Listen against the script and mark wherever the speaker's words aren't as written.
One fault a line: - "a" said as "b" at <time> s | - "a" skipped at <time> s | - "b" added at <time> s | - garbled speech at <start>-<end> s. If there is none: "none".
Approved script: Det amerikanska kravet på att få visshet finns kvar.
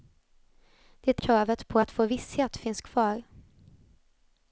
- "amerikanska" skipped at 1.2 s